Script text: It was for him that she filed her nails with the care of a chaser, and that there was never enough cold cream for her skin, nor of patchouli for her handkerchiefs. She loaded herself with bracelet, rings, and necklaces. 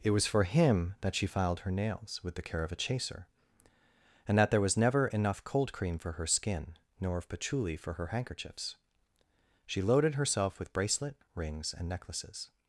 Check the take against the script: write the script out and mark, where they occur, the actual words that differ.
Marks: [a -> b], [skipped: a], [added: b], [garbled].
It was for him that she filed her nails with the care of a chaser, and that there was never enough cold cream for her skin, nor of patchouli for her handkerchiefs. She loaded herself with bracelet, rings, and necklaces.